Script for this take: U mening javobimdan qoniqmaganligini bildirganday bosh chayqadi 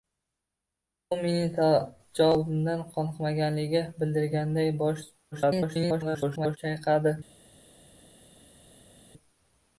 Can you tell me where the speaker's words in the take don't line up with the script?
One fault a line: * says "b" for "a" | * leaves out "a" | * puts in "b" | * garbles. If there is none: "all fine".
* garbles